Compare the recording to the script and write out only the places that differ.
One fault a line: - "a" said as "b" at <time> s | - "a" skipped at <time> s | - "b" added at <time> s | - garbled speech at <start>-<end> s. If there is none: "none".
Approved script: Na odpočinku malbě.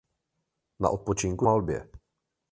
none